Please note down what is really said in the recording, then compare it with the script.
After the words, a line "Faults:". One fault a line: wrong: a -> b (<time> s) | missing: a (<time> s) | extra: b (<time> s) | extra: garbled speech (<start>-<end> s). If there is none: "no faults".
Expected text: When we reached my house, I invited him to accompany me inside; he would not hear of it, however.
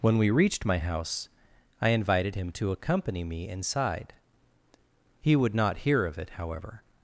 When we reached my house, I invited him to accompany me inside; he would not hear of it, however.
Faults:
no faults